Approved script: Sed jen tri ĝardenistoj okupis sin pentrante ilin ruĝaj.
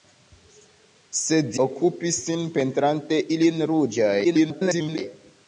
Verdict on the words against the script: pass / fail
fail